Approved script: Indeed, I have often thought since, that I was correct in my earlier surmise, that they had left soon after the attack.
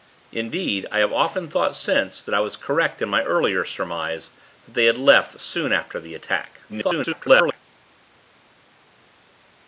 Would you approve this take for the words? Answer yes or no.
no